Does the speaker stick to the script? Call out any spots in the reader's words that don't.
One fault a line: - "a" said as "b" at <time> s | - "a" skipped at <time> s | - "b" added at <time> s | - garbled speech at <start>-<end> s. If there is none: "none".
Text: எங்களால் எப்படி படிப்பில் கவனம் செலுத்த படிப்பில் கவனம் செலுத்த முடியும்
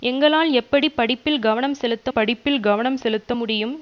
none